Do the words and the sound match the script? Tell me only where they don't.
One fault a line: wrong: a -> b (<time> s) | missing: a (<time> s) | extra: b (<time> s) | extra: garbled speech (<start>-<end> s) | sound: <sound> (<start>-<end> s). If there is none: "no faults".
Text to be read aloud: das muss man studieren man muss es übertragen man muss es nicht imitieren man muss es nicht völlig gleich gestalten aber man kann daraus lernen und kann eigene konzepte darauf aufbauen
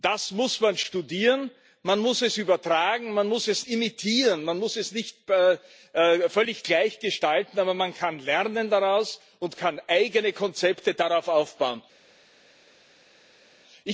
missing: nicht (3.6 s)